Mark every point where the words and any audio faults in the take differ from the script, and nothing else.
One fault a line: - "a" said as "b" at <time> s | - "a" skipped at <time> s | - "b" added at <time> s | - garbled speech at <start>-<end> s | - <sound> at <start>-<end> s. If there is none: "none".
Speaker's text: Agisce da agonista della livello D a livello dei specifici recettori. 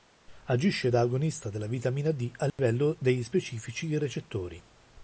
- "livello" said as "vitamina" at 1.7 s
- dropout at 2.5-2.6 s